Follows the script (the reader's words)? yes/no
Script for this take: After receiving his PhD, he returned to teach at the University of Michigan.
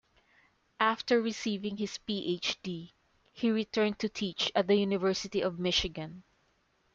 yes